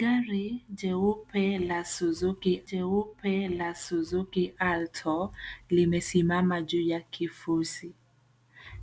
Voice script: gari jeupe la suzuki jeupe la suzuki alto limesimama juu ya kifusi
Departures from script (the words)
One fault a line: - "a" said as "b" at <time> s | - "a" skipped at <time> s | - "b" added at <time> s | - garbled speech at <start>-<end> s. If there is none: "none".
none